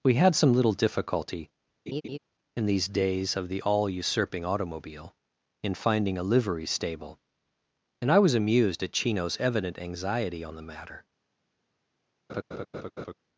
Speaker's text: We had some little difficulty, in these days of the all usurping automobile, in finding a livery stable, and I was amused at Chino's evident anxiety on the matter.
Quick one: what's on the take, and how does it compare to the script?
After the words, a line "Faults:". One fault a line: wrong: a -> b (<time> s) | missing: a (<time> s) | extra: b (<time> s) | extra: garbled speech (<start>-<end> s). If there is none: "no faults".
We had some little difficulty, in these days of the all usurping automobile, in finding a livery stable, and I was amused at Chino's evident anxiety on the matter.
Faults:
no faults